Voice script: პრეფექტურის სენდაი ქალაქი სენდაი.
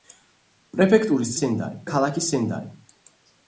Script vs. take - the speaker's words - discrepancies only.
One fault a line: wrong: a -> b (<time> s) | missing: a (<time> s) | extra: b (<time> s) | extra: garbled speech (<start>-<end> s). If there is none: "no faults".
no faults